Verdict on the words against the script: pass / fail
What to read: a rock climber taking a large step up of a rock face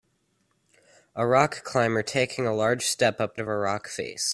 pass